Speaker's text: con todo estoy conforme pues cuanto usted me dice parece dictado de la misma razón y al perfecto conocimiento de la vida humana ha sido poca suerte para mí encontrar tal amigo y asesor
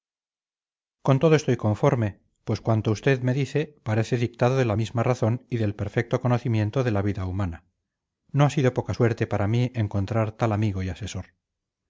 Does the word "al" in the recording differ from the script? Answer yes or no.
yes